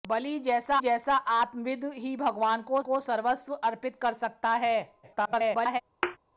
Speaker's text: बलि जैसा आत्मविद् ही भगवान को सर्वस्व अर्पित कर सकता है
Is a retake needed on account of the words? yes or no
yes